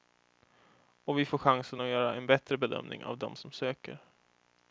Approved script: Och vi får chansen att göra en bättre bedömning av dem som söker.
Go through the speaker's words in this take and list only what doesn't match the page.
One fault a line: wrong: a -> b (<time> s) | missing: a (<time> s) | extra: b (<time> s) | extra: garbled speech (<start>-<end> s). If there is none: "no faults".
no faults